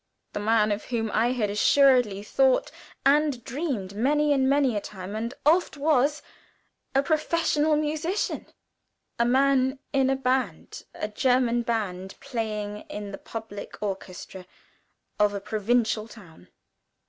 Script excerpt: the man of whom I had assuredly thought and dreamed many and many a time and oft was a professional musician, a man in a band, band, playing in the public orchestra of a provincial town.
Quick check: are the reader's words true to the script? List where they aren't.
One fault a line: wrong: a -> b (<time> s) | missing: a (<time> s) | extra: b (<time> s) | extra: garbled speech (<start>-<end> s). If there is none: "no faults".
extra: a German (10.9 s)